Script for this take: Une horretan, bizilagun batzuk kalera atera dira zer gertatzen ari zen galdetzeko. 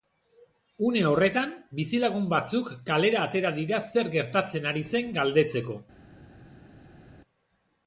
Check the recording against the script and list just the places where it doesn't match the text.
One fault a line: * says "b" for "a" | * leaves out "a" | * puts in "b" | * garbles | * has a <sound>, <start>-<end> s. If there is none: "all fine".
all fine